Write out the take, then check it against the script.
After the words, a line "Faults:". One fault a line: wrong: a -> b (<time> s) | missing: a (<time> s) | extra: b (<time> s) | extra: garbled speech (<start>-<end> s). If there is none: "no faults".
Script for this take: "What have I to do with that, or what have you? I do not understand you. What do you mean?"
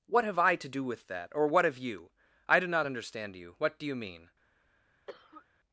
"What have I to do with that, or what have you? I do not understand you. What do you mean?"
Faults:
no faults